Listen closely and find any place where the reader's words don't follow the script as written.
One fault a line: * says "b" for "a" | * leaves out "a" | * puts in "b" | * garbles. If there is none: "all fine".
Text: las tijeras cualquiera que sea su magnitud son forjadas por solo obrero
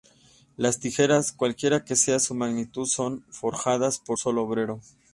all fine